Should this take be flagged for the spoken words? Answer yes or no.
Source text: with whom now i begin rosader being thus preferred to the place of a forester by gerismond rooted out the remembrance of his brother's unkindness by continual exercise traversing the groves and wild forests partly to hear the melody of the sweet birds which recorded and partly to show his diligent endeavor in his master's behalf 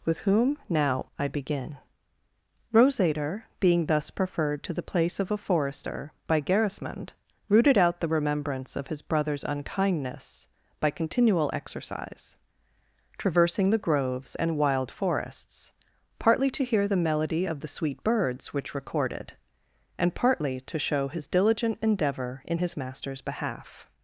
no